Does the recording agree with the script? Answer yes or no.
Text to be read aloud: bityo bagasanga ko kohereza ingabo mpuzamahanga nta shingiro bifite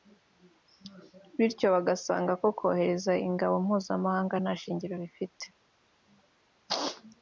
yes